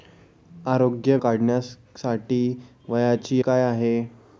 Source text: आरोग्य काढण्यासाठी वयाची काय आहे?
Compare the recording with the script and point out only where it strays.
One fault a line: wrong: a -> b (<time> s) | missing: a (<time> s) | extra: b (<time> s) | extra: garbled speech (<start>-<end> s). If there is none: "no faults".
no faults